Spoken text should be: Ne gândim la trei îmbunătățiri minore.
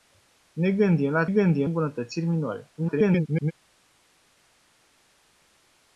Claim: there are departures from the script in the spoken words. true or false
true